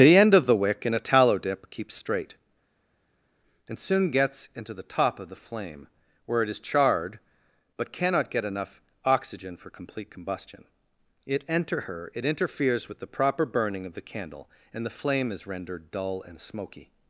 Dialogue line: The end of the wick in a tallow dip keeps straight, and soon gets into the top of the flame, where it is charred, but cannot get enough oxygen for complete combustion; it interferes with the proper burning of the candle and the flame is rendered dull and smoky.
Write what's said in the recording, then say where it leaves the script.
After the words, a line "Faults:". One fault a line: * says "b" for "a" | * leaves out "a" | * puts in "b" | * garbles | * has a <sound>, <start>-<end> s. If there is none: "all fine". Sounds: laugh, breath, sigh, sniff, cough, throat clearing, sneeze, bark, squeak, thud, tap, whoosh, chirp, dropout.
The end of the wick in a tallow dip keeps straight, and soon gets into the top of the flame, where it is charred, but cannot get enough oxygen for complete combustion; it enter her it interferes with the proper burning of the candle and the flame is rendered dull and smoky.
Faults:
* puts in "enter her it"